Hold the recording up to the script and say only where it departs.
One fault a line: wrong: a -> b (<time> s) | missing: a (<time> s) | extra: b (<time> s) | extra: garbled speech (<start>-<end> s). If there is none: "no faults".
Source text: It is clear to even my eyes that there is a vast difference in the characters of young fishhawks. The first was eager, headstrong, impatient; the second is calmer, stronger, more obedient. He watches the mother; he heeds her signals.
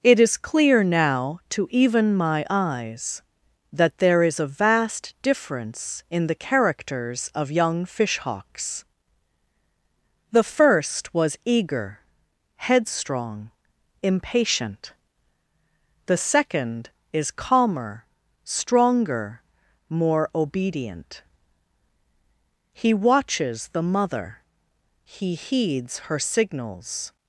extra: now (0.8 s)